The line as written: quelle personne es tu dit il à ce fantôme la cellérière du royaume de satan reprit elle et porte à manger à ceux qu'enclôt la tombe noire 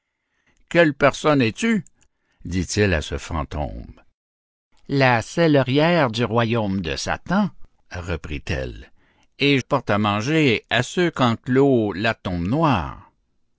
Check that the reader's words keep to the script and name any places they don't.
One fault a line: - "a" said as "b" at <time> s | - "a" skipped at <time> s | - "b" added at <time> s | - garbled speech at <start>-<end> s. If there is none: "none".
none